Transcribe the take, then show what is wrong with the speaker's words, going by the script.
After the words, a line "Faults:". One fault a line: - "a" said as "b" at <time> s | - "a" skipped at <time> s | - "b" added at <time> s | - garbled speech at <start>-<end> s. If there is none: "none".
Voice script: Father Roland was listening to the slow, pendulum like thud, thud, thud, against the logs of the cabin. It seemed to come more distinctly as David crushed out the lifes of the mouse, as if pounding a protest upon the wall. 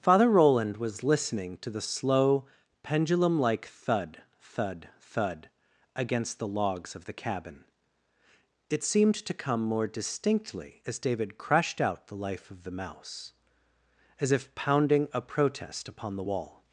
Father Roland was listening to the slow, pendulum like thud, thud, thud, against the logs of the cabin. It seemed to come more distinctly as David crushed out the life of the mouse, as if pounding a protest upon the wall.
Faults:
- "lifes" said as "life" at 12.2 s